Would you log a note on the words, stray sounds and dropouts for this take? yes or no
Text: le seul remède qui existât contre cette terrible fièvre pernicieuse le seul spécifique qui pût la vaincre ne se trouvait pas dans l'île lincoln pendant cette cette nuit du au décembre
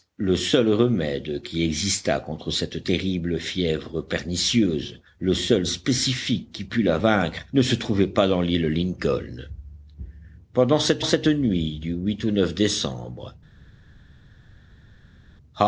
no